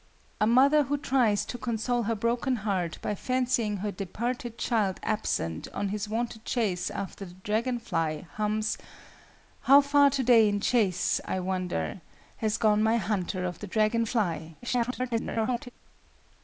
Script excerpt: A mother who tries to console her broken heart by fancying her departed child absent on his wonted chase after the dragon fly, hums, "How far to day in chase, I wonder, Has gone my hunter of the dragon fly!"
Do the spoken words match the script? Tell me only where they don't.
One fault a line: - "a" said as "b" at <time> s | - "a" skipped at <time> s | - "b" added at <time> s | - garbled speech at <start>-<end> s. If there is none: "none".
- garbled speech at 14.6-15.7 s